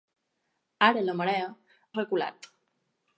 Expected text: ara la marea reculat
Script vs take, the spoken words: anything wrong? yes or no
no